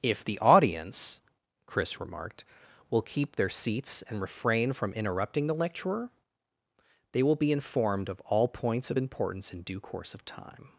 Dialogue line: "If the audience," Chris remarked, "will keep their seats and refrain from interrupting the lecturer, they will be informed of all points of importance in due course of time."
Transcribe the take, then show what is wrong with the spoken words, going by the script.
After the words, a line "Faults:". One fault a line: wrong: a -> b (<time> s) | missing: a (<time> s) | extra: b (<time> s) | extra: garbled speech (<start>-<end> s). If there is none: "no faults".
"If the audience," Chris remarked, "will keep their seats and refrain from interrupting the lecturer, they will be informed of all points of importance in due course of time."
Faults:
no faults